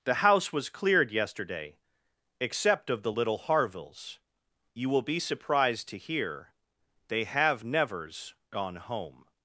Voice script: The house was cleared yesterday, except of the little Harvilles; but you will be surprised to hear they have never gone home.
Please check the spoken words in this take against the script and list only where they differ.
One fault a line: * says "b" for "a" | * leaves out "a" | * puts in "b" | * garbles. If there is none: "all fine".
* leaves out "but"
* says "nevers" for "never"